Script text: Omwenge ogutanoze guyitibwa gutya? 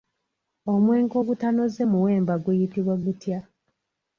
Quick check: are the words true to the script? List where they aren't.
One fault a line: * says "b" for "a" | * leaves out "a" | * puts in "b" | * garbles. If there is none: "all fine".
* puts in "muwemba"